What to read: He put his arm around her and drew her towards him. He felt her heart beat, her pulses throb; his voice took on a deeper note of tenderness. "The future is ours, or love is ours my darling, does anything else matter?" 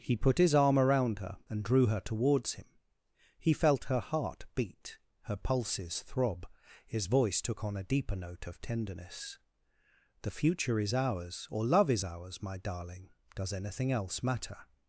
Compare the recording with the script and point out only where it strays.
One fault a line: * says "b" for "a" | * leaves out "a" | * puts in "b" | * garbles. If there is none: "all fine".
all fine